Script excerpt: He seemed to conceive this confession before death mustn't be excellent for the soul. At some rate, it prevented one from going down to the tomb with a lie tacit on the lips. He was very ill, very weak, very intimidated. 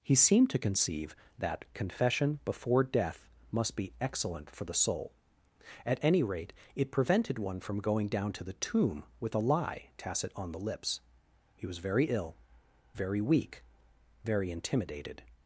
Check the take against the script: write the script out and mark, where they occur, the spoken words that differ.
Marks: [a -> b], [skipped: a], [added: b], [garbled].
He seemed to conceive [this -> that] confession before death [mustn't -> must] be excellent for the soul. At [some -> any] rate, it prevented one from going down to the tomb with a lie tacit on the lips. He was very ill, very weak, very intimidated.